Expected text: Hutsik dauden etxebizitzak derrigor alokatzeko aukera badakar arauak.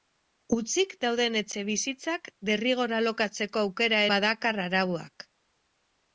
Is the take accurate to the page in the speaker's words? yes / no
yes